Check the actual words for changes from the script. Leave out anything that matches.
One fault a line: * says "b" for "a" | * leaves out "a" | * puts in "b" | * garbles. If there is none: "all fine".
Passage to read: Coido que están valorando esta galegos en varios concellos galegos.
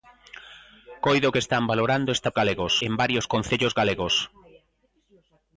all fine